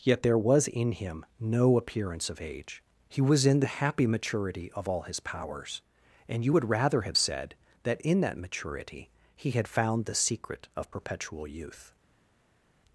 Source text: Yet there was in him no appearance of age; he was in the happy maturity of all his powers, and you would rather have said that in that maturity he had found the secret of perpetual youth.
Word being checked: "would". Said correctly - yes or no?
yes